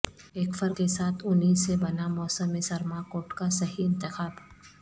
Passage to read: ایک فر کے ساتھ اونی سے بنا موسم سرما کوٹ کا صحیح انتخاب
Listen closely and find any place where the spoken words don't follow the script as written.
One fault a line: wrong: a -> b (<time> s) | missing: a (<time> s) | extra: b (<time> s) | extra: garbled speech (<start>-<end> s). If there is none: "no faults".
no faults